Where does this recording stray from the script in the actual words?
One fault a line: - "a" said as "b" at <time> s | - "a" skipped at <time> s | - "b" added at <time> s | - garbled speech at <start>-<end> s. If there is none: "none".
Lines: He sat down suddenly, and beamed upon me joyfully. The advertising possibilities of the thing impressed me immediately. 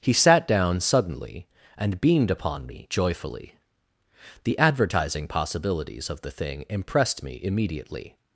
none